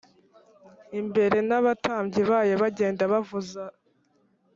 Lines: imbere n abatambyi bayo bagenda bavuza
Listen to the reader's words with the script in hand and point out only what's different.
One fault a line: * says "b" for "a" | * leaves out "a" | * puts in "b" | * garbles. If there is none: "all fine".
all fine